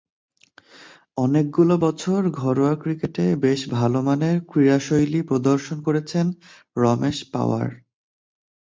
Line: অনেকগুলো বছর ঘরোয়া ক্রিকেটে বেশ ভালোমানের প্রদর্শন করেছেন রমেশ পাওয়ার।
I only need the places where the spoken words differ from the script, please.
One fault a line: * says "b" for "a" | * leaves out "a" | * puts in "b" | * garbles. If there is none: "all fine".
* puts in "ক্রীড়াশৈলী"